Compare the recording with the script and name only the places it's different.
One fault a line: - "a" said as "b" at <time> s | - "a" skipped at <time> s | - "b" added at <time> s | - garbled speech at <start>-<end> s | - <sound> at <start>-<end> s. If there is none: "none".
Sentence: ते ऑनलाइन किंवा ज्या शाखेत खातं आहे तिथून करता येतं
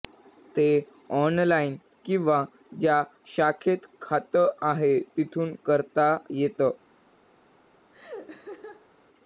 - laugh at 7.9-8.9 s